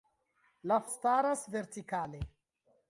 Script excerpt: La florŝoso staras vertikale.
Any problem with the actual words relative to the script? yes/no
yes